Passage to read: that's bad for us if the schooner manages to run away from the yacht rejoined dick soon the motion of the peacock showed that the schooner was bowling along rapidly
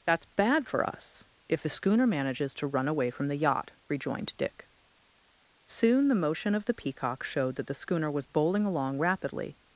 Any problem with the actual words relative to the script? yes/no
no